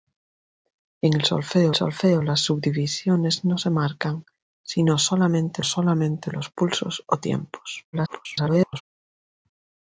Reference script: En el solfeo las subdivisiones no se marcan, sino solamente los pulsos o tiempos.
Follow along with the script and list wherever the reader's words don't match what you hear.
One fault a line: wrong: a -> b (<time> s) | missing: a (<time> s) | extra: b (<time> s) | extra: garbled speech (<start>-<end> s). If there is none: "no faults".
extra: solfeo (1.7 s)
extra: solamente (5.6 s)
extra: garbled speech (7.9-8.8 s)